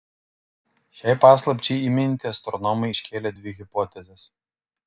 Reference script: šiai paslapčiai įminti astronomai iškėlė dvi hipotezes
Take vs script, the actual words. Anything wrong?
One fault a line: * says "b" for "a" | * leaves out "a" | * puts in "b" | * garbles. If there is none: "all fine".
all fine